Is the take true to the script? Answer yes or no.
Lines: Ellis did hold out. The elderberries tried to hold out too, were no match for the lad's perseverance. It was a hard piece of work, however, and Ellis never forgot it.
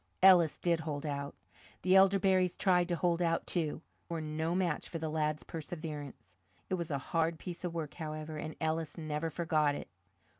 yes